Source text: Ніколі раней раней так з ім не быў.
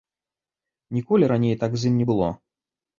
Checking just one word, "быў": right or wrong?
wrong